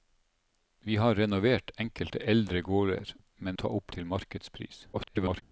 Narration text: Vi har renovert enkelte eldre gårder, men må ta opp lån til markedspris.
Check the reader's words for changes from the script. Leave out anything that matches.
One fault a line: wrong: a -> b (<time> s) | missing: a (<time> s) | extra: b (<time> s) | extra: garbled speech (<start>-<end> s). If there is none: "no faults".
missing: må (3.6 s)
missing: lån (3.9 s)
extra: garbled speech (4.9-5.4 s)